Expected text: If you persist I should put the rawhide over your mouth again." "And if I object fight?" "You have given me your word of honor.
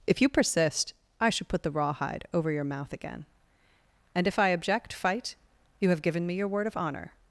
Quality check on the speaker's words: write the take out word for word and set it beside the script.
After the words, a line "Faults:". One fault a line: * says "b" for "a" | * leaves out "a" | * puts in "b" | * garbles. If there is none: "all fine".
If you persist I should put the rawhide over your mouth again." "And if I object fight?" "You have given me your word of honor.
Faults:
all fine